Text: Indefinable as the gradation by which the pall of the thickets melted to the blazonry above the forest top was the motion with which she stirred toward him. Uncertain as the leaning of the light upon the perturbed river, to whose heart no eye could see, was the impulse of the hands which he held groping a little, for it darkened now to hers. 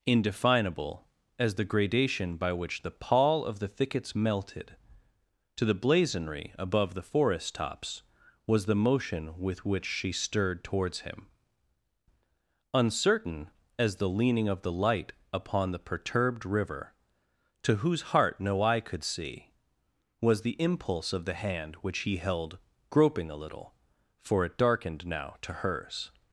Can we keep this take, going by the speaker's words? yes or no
no